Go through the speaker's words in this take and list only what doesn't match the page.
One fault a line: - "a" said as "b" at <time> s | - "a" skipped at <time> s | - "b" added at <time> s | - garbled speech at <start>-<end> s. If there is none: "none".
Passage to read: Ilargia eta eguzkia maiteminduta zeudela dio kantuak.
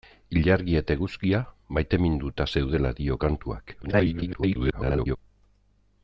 - garbled speech at 3.8-5.2 s